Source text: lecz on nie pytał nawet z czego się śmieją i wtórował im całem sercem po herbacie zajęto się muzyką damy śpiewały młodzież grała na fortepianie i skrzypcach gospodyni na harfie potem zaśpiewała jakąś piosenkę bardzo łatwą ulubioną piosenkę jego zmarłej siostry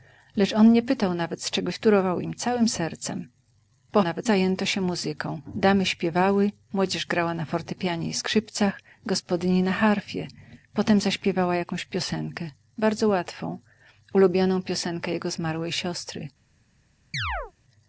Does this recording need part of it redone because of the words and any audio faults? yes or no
yes